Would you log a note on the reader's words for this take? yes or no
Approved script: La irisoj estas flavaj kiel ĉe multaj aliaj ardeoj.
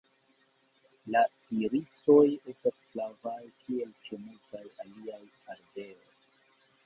no